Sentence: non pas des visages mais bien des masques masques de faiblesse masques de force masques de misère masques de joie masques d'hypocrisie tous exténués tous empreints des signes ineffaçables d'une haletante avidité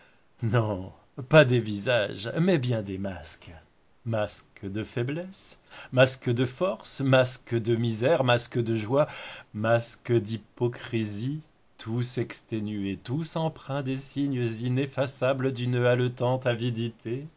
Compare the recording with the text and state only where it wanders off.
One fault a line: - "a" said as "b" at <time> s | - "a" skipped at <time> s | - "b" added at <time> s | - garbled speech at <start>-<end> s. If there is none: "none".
none